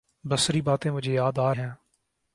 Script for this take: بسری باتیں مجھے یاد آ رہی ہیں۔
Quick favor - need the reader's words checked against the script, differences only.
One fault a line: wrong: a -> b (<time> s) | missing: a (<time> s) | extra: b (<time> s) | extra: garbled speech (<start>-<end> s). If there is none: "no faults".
missing: رہی (1.5 s)